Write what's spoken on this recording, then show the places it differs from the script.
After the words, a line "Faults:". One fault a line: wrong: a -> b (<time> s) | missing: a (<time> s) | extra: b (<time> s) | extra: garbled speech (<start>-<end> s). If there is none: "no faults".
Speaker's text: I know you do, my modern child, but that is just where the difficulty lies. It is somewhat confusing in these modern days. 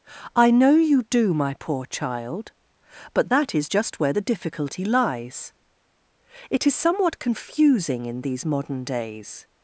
I know you do, my poor child, but that is just where the difficulty lies. It is somewhat confusing in these modern days.
Faults:
wrong: modern -> poor (1.6 s)